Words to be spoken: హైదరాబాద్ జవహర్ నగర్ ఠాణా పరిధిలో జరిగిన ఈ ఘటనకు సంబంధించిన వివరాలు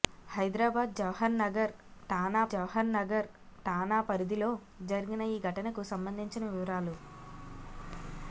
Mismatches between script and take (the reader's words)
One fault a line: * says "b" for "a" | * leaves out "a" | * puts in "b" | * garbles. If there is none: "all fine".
* puts in "జవహర్ నగర్ ఠాణా"